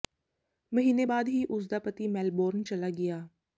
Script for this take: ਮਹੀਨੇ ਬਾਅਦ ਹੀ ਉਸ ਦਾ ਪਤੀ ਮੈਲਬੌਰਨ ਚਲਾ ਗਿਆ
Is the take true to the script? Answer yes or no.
yes